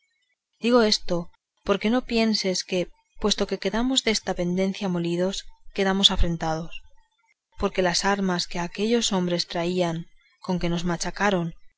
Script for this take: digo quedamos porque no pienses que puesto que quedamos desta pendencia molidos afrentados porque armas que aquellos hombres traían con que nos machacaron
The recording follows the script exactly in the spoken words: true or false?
false